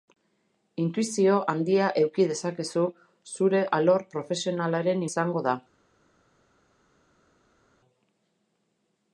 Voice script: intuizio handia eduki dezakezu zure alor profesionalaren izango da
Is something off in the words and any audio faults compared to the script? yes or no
no